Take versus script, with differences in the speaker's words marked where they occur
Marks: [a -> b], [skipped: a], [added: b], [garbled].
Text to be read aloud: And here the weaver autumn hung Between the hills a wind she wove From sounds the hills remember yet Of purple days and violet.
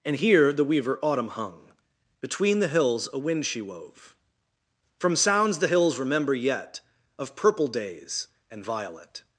And here the weaver autumn hung Between the hills a wind she wove From sounds the hills remember yet Of purple days and violet.